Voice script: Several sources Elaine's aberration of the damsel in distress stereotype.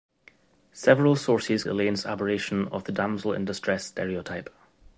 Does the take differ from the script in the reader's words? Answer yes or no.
no